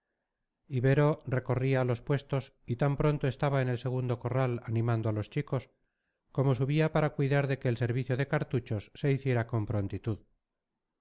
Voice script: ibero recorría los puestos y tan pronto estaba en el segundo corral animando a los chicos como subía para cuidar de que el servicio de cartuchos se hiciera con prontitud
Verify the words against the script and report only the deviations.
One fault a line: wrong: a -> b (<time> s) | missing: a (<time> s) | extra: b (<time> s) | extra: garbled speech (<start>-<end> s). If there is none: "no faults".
no faults